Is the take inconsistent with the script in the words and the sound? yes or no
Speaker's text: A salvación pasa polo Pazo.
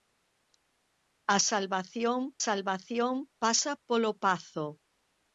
yes